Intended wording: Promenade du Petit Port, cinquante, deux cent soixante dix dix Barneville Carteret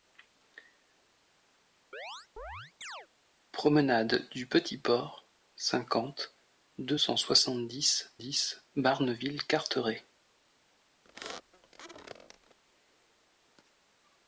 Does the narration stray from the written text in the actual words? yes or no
no